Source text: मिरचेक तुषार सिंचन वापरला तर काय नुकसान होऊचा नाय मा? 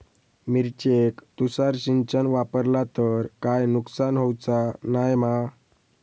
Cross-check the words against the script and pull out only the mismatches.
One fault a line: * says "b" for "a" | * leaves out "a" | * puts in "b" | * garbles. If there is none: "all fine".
all fine